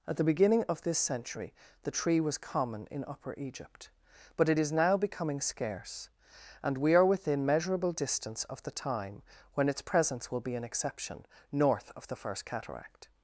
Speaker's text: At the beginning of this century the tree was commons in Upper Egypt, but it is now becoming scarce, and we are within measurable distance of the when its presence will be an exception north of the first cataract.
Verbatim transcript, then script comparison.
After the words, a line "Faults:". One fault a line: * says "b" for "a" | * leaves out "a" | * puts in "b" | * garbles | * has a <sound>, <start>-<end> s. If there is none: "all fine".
At the beginning of this century the tree was common in Upper Egypt, but it is now becoming scarce, and we are within measurable distance of the time when its presence will be an exception north of the first cataract.
Faults:
* says "common" for "commons"
* puts in "time"